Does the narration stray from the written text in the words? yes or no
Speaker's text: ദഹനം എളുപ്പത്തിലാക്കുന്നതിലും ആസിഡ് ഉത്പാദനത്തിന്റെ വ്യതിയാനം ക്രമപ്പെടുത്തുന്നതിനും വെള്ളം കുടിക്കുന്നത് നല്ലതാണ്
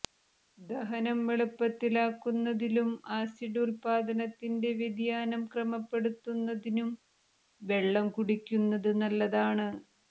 no